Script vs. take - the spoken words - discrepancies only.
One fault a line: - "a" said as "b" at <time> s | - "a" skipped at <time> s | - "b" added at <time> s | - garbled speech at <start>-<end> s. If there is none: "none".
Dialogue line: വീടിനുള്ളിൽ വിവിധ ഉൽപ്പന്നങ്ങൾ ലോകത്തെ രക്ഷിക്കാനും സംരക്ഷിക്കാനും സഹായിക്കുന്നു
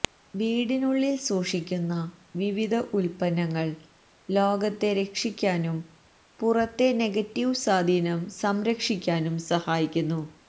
- "സൂക്ഷിക്കുന്ന" added at 1.2 s
- "പുറത്തെ നെഗറ്റീവ് സ്വാധീനം" added at 6.4 s